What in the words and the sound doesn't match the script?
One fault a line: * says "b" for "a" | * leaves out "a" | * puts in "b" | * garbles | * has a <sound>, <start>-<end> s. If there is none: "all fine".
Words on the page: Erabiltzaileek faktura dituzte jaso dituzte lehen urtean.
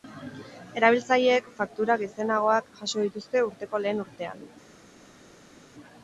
* says "gizenagoak" for "dituzte"
* puts in "urteko"